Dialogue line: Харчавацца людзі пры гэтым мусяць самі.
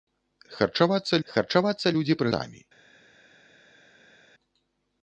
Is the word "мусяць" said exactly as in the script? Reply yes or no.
no